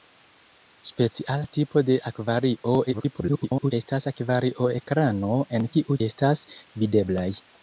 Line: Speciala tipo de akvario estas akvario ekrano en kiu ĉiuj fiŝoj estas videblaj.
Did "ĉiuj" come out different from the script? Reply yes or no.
yes